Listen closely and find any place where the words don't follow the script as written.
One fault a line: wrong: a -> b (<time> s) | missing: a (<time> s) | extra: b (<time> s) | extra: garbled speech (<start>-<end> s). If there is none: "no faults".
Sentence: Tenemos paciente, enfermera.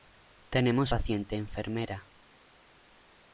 no faults